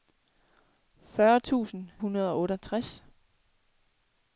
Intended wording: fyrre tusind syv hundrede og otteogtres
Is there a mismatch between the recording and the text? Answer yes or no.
yes